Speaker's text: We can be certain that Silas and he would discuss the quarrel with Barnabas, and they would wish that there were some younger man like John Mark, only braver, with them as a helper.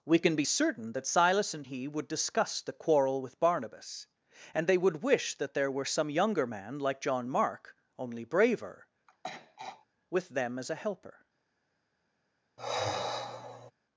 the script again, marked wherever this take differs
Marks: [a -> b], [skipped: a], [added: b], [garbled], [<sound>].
We can be certain that Silas and he would discuss the quarrel with Barnabas, and they would wish that there were some younger man like John Mark, only braver, [throat clearing] with them as a helper. [sigh]